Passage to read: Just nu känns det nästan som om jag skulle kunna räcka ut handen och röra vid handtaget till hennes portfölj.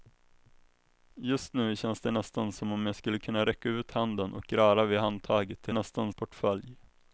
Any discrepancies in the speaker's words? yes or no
yes